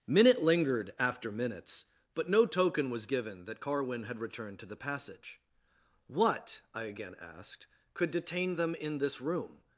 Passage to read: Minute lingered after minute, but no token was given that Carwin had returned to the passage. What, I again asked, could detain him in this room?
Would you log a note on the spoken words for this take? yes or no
yes